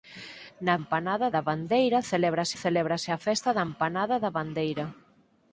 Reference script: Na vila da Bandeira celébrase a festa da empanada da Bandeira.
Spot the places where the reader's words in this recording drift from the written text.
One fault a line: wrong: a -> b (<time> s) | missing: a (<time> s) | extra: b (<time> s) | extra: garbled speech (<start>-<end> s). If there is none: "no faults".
wrong: vila -> empanada (0.8 s)
extra: celébrase (2.6 s)